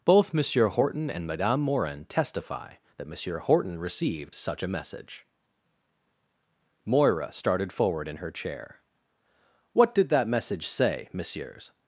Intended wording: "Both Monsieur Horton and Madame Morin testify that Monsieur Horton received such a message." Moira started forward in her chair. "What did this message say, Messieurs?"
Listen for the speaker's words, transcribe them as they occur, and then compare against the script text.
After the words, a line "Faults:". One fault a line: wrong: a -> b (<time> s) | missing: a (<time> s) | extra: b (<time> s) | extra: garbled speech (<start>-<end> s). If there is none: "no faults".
"Both Monsieur Horton and Madame Morin testify that Monsieur Horton received such a message." Moira started forward in her chair. "What did that message say, Messieurs?"
Faults:
wrong: this -> that (10.1 s)